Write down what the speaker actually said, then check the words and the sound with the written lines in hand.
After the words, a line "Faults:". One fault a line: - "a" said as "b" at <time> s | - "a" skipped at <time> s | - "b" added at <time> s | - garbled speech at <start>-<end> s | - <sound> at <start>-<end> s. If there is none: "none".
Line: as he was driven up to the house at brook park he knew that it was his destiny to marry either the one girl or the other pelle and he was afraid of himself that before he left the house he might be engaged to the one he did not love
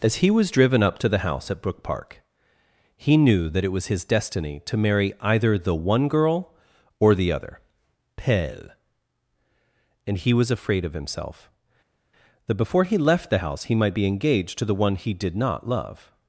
as he was driven up to the house at brook park he knew that it was his destiny to marry either the one girl or the other pelle and he was afraid of himself that before he left the house he might be engaged to the one he did not love
Faults:
none